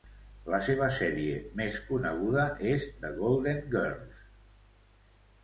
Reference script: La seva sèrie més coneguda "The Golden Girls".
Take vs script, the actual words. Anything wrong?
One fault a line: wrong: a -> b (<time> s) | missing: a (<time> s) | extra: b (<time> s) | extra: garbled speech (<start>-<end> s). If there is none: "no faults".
extra: és (2.7 s)